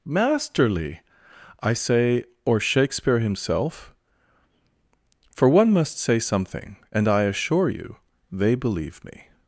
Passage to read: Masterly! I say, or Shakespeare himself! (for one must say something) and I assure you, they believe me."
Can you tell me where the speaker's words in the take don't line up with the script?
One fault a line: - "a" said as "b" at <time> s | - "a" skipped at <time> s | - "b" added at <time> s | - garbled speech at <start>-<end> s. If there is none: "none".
none